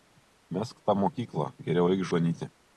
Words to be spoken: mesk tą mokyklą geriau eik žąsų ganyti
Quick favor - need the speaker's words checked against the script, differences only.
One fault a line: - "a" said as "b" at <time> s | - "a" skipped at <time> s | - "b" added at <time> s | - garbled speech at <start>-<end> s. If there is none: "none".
- "žąsų" skipped at 2.0 s